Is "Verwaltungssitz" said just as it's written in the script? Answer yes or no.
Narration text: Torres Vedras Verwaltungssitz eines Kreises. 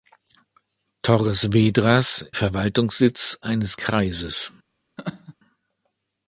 yes